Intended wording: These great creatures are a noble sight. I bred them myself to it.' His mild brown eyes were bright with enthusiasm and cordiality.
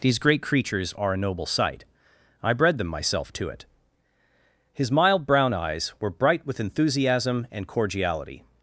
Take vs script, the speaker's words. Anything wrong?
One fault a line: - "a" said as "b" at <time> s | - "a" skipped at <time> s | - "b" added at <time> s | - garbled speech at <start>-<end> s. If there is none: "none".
none